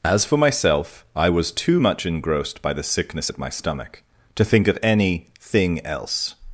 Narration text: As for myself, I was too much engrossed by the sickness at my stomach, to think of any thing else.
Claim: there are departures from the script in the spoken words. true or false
false